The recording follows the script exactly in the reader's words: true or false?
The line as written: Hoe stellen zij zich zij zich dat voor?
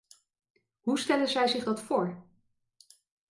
false